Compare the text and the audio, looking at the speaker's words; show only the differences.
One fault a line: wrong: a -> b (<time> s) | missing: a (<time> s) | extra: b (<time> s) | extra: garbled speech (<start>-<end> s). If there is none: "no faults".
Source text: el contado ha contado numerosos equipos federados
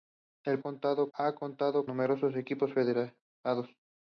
no faults